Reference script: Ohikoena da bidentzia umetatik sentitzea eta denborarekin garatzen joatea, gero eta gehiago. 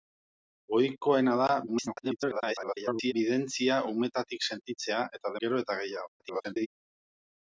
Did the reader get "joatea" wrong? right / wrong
wrong